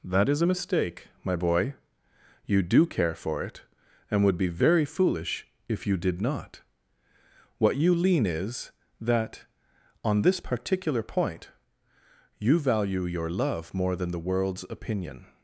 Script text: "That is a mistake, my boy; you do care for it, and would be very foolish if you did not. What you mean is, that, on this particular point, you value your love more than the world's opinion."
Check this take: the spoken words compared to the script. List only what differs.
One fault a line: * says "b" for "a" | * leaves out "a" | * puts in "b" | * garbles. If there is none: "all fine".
* says "lean" for "mean"